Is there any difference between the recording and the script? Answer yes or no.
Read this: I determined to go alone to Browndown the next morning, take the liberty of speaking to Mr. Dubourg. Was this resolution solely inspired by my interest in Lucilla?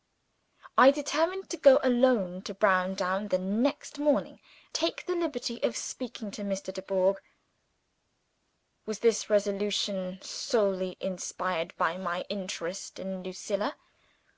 no